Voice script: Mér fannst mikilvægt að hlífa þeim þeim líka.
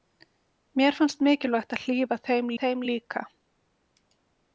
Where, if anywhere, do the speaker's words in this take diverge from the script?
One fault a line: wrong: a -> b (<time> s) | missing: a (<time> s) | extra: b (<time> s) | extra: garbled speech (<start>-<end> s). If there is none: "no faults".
no faults